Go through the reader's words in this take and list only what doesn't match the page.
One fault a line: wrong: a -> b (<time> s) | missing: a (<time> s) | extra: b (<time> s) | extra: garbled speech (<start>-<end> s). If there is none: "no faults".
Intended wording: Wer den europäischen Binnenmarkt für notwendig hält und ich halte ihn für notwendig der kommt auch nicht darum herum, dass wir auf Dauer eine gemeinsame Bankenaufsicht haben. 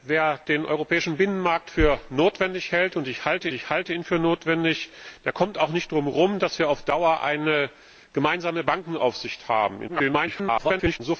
extra: ich halte (3.5 s)
extra: garbled speech (9.9-11.0 s)